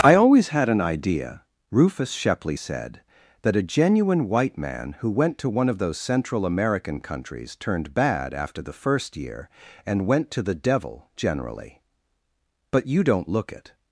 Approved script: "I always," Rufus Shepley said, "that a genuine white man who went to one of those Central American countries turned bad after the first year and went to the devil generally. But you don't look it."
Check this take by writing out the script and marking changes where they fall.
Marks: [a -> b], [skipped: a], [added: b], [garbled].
"I always," [added: had an idea] Rufus Shepley said, "that a genuine white man who went to one of those Central American countries turned bad after the first year and went to the devil generally. But you don't look it."